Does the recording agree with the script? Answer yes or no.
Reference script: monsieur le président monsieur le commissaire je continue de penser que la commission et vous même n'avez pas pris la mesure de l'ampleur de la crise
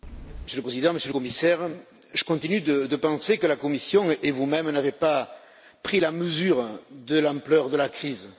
yes